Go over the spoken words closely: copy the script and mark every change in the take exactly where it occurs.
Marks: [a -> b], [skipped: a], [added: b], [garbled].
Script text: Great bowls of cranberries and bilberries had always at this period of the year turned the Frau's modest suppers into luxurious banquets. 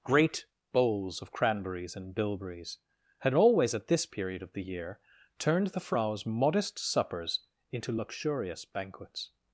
Great bowls of cranberries and bilberries had always at this period of the year turned the Frau's modest suppers into luxurious banquets.